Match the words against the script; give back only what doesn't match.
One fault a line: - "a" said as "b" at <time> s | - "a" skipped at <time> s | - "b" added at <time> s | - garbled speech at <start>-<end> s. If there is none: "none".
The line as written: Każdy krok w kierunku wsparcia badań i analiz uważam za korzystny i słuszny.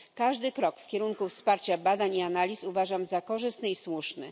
none